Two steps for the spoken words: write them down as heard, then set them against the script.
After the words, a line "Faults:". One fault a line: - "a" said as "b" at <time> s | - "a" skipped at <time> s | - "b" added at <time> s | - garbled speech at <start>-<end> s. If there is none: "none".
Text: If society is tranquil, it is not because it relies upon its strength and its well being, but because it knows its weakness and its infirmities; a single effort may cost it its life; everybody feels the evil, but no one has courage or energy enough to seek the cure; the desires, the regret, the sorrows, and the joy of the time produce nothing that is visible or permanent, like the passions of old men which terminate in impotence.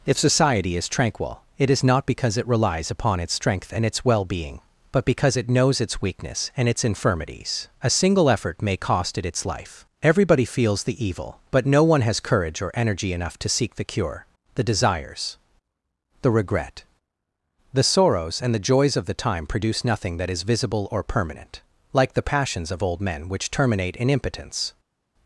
If society is tranquil, it is not because it relies upon its strength and its well being, but because it knows its weakness and its infirmities; a single effort may cost it its life; everybody feels the evil, but no one has courage or energy enough to seek the cure; the desires, the regret, the sorrows, and the joys of the time produce nothing that is visible or permanent, like the passions of old men which terminate in impotence.
Faults:
- "joy" said as "joys" at 18.7 s